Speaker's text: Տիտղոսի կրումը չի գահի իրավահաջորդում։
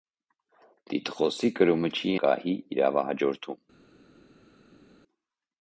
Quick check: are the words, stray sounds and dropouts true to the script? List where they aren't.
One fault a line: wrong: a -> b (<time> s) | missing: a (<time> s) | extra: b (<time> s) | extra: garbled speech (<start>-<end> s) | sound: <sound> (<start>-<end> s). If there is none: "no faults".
no faults